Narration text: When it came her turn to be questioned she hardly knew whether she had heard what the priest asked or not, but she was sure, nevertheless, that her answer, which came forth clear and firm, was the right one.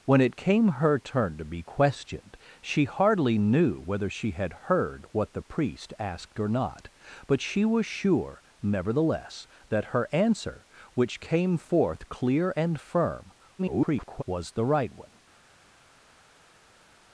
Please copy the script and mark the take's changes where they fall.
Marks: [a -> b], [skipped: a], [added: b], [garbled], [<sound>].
When it came her turn to be questioned she hardly knew whether she had heard what the priest asked or not, but she was sure, nevertheless, that her answer, which came forth clear and firm, [garbled] was the right one.